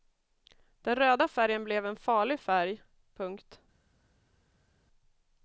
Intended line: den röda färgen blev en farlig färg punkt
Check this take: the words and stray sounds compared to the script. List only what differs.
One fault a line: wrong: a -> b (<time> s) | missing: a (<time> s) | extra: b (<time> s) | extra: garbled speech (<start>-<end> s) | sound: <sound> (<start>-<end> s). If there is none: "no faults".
no faults